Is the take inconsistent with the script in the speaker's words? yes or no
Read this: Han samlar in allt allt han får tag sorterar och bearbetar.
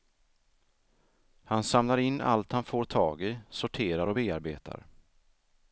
yes